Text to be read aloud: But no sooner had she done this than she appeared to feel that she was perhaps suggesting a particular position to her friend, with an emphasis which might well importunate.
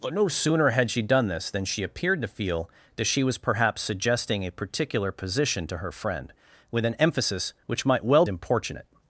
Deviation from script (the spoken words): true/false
false